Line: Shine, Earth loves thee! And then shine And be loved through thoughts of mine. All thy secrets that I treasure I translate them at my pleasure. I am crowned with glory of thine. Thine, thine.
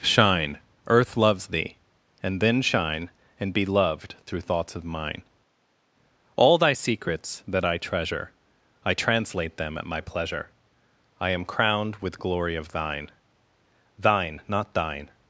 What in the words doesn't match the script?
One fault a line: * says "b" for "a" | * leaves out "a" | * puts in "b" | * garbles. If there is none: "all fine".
* puts in "not"